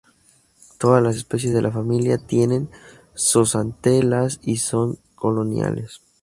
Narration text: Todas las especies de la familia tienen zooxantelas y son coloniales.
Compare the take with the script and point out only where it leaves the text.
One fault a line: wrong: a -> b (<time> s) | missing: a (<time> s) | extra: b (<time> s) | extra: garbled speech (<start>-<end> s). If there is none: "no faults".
no faults